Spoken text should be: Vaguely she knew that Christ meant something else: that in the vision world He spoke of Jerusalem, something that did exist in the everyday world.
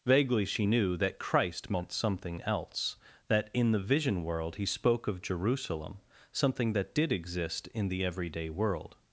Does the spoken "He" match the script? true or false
true